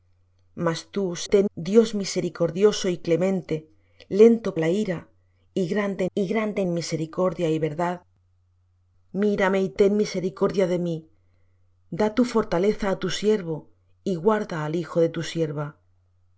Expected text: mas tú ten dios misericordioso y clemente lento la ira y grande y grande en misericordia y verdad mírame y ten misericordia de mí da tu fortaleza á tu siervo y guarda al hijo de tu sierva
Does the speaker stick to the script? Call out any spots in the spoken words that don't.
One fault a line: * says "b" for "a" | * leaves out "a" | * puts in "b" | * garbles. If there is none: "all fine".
all fine